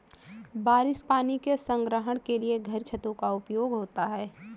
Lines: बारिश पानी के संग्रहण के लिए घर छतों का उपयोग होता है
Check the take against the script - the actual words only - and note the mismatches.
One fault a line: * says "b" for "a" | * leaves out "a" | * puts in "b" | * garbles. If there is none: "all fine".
all fine